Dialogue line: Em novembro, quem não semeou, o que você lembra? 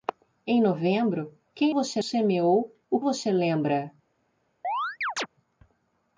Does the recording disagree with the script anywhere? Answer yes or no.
yes